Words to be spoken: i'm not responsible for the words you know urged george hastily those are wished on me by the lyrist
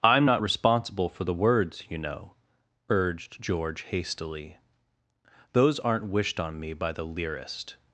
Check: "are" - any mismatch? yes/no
yes